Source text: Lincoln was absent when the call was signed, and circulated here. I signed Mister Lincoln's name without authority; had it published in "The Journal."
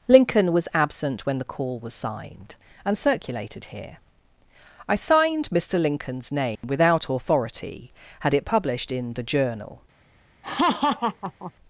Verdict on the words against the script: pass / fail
pass